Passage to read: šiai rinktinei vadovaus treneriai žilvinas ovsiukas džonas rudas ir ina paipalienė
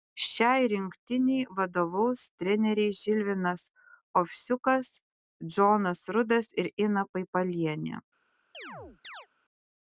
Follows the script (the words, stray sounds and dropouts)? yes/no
no